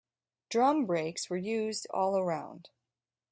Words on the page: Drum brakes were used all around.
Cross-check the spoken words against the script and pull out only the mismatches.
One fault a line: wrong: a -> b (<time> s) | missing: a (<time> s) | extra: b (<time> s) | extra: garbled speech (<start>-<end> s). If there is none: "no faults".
no faults